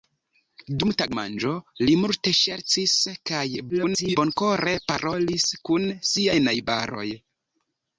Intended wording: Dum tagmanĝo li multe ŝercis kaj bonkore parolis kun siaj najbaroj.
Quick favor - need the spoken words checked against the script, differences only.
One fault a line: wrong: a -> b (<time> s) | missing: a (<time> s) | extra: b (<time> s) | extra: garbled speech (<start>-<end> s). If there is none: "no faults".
extra: garbled speech (3.7-4.2 s)